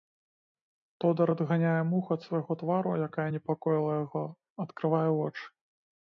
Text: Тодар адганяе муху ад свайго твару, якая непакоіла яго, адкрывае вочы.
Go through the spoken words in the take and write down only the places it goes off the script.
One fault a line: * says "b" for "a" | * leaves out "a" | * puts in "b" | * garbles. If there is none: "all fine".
all fine